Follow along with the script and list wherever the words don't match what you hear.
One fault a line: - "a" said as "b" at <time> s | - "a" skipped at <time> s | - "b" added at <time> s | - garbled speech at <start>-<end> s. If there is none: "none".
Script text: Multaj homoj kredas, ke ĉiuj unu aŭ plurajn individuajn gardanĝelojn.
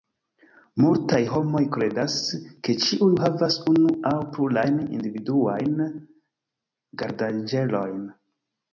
- "havas" added at 3.3 s